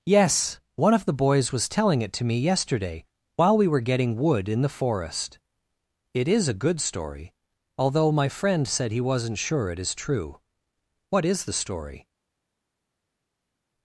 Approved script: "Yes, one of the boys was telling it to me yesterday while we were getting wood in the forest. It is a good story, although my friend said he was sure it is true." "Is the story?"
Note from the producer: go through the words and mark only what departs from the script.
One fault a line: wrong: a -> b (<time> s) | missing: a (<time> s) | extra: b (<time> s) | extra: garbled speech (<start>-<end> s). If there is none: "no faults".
wrong: was -> wasn't (9.0 s)
extra: What (11.1 s)